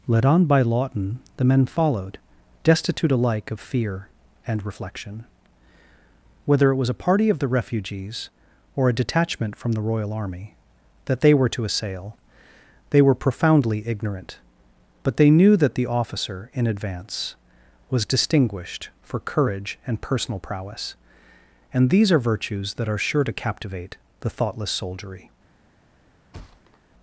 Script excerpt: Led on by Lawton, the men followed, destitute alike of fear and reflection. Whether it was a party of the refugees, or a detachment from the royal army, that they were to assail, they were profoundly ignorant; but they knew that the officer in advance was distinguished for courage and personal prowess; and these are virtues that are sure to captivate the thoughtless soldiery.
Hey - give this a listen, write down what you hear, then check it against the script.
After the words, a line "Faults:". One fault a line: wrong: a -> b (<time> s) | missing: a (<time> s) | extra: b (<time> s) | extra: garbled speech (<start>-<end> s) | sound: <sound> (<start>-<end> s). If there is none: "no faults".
Led on by Lawton, the men followed, destitute alike of fear and reflection. Whether it was a party of the refugees, or a detachment from the royal army, that they were to assail, they were profoundly ignorant; but they knew that the officer in advance was distinguished for courage and personal prowess; and these are virtues that are sure to captivate the thoughtless soldiery.
Faults:
sound: thud (26.3-26.8 s)